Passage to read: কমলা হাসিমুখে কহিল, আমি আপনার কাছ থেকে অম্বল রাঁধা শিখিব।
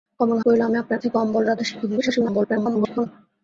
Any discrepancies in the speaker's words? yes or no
yes